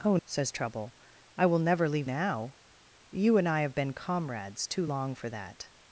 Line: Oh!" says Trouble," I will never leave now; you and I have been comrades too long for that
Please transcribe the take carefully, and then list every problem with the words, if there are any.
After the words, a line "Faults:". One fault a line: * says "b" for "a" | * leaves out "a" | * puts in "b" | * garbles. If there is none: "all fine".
Oh!" says Trouble," I will never leave now; you and I have been comrades too long for that
Faults:
all fine